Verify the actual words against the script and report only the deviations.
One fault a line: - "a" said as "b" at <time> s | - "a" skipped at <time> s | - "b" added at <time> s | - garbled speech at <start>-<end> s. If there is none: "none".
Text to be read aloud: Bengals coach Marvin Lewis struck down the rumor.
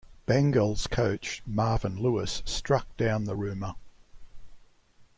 none